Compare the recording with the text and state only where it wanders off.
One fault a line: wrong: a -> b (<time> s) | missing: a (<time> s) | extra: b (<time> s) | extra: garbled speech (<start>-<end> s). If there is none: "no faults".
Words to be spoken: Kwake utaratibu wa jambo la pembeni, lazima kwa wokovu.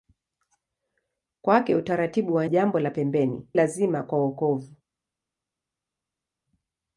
no faults